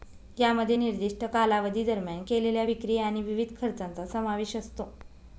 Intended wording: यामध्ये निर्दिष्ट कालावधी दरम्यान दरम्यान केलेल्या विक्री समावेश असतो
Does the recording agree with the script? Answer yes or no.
no